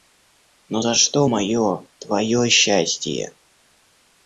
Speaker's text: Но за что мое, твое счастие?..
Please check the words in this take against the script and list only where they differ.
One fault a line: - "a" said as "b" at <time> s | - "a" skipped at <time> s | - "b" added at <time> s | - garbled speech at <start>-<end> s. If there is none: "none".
none